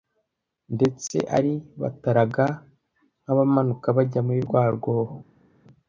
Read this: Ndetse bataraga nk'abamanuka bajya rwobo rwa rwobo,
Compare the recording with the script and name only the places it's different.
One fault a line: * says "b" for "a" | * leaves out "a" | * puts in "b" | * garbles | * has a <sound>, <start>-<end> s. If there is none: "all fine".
* puts in "ari"
* says "muri" for "rwobo"